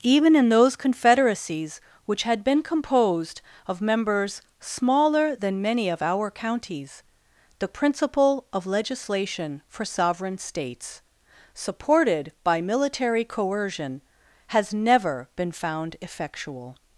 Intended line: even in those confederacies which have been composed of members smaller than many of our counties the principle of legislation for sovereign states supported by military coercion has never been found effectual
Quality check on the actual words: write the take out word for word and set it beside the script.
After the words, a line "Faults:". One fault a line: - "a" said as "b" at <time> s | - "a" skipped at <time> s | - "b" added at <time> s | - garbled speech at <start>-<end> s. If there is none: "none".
even in those confederacies which had been composed of members smaller than many of our counties the principle of legislation for sovereign states supported by military coercion has never been found effectual
Faults:
- "have" said as "had" at 2.2 s